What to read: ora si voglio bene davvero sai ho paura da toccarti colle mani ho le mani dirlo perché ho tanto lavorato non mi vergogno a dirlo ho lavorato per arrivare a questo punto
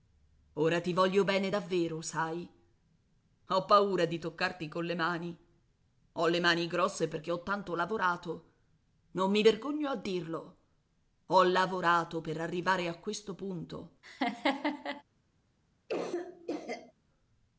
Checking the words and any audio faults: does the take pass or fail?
fail